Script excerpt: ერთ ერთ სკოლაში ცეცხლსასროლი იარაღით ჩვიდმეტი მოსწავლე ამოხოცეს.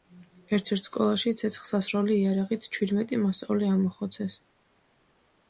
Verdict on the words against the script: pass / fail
pass